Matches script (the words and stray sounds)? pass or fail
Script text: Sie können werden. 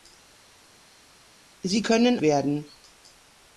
pass